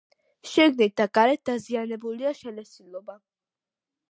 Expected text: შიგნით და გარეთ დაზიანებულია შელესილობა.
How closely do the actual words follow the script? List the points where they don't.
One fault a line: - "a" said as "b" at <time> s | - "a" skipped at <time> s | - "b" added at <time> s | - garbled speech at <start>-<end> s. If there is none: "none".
none